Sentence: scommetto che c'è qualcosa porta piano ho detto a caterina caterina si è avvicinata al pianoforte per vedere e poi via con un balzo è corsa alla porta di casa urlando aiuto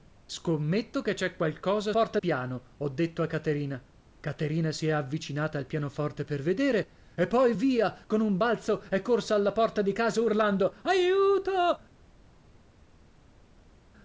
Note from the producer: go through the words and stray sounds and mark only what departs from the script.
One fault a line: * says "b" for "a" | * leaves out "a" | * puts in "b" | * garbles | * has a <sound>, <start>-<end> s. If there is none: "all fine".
all fine